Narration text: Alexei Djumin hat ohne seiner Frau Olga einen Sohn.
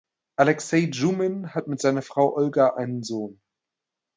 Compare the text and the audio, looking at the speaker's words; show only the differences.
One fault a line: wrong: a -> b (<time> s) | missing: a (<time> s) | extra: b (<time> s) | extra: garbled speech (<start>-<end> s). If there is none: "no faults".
wrong: ohne -> mit (1.7 s)